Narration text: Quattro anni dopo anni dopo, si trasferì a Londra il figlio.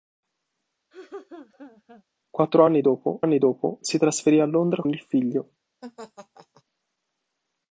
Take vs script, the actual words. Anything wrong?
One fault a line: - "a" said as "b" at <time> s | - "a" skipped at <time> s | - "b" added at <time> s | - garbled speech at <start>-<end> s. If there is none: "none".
none